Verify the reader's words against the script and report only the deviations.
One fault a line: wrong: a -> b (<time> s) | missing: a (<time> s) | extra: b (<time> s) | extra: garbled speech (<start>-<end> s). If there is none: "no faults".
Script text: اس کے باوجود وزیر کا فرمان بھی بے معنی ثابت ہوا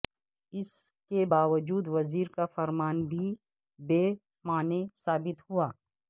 no faults